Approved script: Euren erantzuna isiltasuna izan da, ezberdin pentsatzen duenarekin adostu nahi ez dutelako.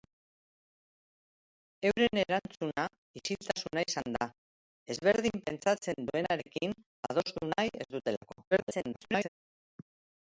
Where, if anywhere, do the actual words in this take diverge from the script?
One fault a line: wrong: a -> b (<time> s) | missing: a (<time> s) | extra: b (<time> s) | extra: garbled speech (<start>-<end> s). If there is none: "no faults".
extra: garbled speech (8.5-9.3 s)